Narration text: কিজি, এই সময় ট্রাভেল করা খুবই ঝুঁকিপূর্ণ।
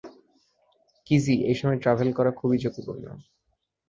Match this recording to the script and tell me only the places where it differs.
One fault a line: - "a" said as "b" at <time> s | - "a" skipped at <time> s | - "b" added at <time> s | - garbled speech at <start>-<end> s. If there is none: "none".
none